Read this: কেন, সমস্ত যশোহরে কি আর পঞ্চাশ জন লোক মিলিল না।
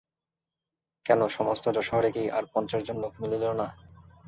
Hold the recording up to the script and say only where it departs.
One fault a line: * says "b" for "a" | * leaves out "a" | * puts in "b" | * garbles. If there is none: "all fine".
all fine